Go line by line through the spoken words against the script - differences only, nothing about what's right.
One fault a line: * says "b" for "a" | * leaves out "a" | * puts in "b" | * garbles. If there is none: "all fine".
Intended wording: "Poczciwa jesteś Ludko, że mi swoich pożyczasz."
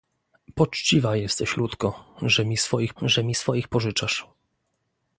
* puts in "że mi swoich"